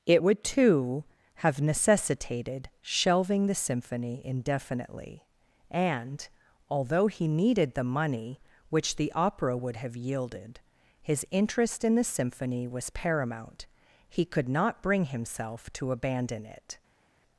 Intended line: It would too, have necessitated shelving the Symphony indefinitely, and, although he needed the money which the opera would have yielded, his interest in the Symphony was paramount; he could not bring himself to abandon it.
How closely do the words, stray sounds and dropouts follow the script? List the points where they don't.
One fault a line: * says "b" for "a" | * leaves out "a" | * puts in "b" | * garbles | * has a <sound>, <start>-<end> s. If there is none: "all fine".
all fine